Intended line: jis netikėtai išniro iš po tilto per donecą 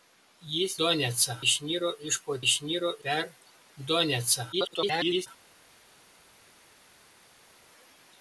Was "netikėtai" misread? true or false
true